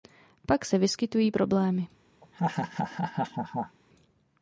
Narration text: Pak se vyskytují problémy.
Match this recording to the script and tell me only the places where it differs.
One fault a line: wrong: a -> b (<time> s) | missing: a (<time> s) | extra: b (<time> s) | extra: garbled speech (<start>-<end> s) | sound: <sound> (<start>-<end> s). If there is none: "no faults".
sound: laugh (2.2-3.8 s)